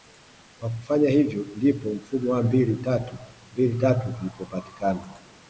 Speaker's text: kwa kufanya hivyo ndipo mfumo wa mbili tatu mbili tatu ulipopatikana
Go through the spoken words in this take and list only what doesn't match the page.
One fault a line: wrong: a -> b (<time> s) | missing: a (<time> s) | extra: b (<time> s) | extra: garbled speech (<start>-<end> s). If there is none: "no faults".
no faults